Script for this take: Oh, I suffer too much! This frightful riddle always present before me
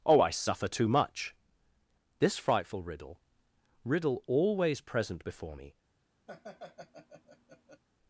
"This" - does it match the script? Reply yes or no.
yes